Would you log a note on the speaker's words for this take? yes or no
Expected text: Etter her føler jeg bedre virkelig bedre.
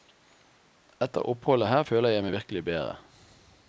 yes